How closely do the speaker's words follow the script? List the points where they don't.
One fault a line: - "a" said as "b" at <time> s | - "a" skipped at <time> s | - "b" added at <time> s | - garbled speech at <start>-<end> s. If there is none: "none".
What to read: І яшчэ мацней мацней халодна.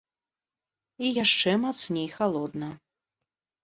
- "мацней" skipped at 2.1 s